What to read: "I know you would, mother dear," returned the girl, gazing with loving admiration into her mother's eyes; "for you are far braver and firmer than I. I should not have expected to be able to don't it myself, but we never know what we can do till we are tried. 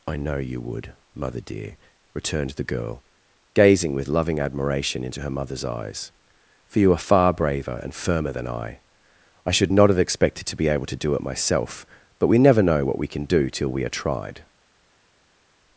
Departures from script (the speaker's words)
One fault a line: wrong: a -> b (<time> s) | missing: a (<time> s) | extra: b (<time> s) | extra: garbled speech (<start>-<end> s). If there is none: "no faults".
wrong: don't -> do (11.0 s)